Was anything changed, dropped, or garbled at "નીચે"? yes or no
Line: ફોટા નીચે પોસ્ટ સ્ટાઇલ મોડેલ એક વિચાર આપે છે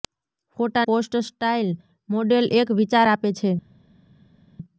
yes